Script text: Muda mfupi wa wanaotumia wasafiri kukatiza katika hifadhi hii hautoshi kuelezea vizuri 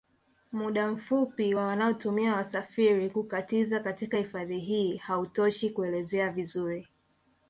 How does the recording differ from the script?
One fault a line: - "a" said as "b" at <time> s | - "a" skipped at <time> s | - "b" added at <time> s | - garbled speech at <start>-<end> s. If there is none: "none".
none